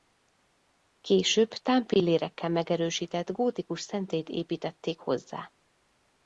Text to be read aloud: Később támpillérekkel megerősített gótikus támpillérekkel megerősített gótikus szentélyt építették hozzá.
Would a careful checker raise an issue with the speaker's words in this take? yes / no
yes